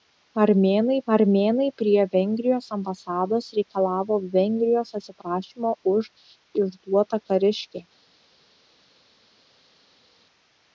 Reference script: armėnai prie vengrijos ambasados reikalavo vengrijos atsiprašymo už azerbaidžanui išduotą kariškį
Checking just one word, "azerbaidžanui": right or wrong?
wrong